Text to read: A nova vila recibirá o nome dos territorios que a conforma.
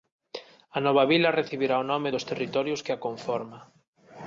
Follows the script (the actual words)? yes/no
yes